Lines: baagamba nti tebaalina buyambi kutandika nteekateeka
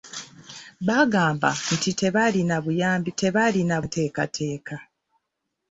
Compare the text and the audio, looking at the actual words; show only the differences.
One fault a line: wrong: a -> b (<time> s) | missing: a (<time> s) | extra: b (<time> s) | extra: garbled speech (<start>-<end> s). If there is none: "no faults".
wrong: kutandika -> tebaalina (3.2 s)